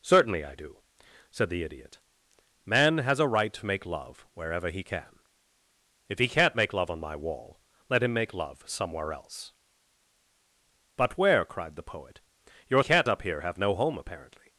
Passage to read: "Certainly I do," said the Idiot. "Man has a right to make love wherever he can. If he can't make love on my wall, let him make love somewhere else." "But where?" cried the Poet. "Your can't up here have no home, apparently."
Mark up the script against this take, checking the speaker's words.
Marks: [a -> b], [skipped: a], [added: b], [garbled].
"Certainly I do," said the Idiot. "Man has a right to make love wherever he can. If he can't make love on my wall, let him make love somewhere else." "But where?" cried the Poet. "Your can't up here have no home, apparently."